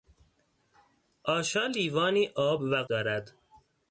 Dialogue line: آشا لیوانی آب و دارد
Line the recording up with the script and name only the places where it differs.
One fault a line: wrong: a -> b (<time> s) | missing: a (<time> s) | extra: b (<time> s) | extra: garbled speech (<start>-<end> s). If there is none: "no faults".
no faults